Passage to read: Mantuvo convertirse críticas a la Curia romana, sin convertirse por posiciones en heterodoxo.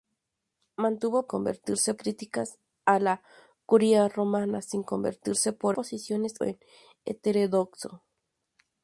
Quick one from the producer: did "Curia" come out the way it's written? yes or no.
yes